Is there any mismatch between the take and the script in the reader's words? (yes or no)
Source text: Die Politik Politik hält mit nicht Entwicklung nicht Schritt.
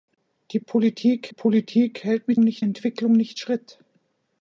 no